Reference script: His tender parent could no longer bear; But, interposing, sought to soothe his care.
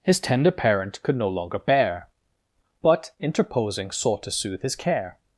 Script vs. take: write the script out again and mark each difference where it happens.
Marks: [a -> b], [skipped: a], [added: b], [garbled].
His tender parent could no longer bear; But, interposing, sought to soothe his care.